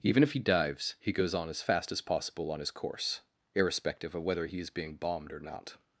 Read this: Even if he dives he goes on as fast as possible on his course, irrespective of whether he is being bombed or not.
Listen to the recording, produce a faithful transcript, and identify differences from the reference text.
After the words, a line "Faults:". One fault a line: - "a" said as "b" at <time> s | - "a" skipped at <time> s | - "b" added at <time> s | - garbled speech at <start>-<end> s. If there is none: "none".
Even if he dives he goes on as fast as possible on his course, irrespective of whether he is being bombed or not.
Faults:
none